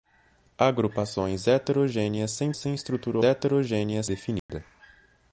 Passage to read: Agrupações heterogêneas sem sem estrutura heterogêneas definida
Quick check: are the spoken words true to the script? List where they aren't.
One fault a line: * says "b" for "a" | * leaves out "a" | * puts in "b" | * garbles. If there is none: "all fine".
all fine